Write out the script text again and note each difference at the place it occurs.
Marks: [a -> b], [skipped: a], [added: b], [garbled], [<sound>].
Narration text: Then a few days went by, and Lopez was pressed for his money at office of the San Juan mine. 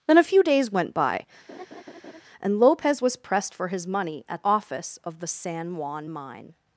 Then a few days went by, [laugh] and Lopez was pressed for his money at office of the San Juan mine.